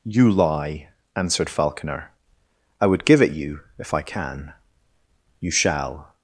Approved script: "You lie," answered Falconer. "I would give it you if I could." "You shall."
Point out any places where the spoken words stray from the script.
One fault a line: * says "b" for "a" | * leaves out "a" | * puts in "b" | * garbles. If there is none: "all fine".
* says "can" for "could"